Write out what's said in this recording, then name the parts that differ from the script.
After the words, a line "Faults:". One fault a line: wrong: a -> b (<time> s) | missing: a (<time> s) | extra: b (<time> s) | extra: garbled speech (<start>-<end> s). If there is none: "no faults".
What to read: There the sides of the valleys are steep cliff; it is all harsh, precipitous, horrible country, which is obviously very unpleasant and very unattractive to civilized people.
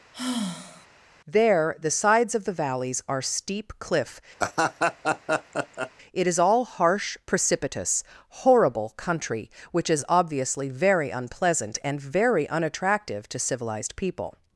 There the sides of the valleys are steep cliff; it is all harsh, precipitous, horrible country, which is obviously very unpleasant and very unattractive to civilized people.
Faults:
no faults